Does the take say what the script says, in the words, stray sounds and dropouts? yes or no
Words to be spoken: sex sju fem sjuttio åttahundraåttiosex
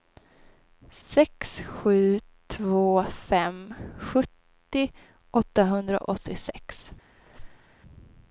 no